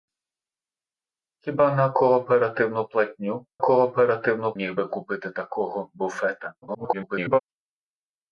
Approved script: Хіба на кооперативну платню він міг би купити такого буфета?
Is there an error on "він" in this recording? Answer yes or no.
yes